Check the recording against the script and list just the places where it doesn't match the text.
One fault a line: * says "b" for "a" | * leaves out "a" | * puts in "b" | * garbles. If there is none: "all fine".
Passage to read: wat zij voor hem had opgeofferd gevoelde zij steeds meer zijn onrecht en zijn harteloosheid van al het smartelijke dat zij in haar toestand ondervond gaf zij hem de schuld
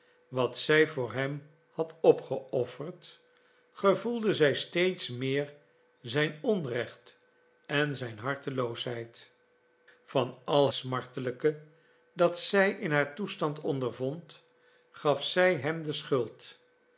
* leaves out "het"